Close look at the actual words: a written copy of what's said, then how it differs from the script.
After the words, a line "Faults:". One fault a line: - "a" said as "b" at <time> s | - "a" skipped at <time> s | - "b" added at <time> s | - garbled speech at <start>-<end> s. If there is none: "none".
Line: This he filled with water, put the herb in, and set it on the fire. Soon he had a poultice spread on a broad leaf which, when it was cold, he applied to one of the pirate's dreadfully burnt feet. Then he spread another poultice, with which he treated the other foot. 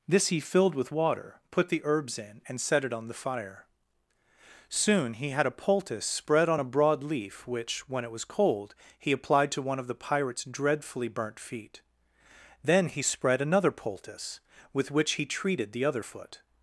This he filled with water, put the herbs in, and set it on the fire. Soon he had a poultice spread on a broad leaf which, when it was cold, he applied to one of the pirate's dreadfully burnt feet. Then he spread another poultice, with which he treated the other foot.
Faults:
- "herb" said as "herbs" at 1.8 s